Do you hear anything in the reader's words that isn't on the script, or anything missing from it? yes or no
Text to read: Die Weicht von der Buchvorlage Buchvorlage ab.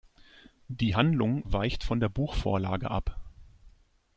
yes